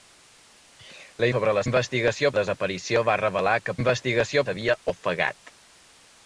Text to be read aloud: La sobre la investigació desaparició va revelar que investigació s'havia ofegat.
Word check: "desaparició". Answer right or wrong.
right